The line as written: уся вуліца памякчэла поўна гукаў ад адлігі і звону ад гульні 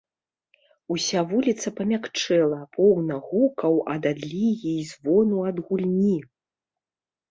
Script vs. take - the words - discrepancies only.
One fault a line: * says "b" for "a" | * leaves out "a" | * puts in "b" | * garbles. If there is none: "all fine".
all fine